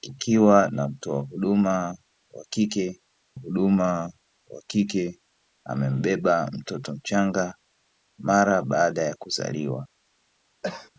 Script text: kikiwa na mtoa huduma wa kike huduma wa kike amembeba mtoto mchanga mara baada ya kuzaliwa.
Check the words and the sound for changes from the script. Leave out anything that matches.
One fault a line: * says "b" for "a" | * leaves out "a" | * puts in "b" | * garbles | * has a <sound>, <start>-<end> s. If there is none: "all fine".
* has a cough, 10.6-10.9 s